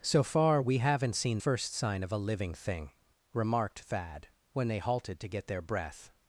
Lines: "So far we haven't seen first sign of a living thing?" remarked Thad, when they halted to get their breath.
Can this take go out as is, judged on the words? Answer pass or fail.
pass